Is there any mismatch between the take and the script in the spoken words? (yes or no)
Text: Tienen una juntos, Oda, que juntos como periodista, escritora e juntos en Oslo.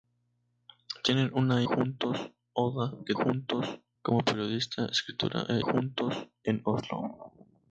no